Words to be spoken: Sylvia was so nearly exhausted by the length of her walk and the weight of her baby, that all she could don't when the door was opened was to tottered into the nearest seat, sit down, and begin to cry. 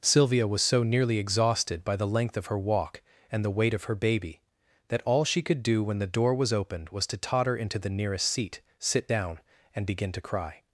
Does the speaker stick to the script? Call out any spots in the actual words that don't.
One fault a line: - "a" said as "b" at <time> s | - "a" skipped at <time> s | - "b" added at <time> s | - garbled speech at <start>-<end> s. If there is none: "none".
- "don't" said as "do" at 5.6 s
- "tottered" said as "totter" at 7.2 s